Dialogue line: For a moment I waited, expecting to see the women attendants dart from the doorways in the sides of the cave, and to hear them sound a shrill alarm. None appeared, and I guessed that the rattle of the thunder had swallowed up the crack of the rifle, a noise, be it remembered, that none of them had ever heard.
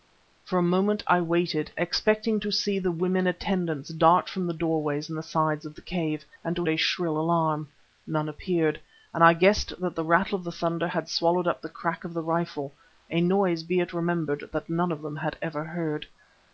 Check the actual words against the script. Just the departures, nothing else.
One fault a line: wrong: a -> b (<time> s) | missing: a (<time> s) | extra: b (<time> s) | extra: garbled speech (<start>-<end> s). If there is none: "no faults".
missing: hear them sound (6.7 s)